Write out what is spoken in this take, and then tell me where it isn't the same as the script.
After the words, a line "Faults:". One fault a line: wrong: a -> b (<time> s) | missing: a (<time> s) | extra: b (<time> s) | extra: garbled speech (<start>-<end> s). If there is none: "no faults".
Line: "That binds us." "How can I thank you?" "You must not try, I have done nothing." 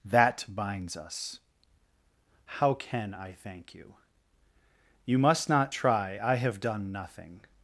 "That binds us." "How can I thank you?" "You must not try, I have done nothing."
Faults:
no faults